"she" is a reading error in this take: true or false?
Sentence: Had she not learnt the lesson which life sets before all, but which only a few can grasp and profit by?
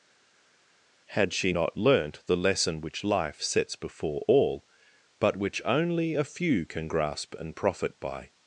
false